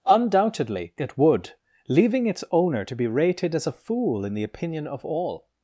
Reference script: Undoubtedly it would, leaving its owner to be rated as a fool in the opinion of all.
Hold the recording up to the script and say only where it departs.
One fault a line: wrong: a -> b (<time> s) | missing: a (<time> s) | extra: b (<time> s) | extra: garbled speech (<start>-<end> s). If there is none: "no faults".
no faults